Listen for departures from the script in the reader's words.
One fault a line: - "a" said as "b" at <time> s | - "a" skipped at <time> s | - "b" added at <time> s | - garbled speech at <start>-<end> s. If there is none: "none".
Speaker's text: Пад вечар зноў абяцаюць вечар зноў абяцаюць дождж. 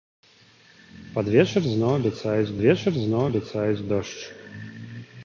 none